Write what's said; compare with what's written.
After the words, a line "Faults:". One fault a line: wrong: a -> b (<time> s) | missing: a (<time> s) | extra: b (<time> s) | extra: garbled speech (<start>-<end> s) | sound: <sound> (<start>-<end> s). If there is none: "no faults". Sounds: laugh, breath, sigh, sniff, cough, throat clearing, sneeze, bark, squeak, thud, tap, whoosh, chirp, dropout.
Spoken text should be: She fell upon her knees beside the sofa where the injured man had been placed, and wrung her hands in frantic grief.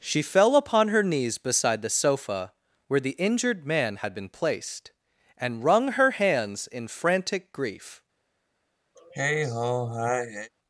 She fell upon her knees beside the sofa where the injured man had been placed, and wrung her hands in frantic grief.
Faults:
sound: sigh (8.9-10.5 s)